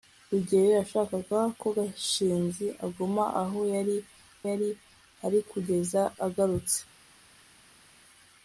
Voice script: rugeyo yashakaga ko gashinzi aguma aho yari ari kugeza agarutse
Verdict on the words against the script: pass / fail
fail